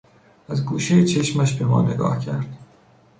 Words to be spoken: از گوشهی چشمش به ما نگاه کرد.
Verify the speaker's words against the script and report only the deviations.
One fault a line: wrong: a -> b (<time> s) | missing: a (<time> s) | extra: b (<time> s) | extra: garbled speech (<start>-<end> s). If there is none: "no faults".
no faults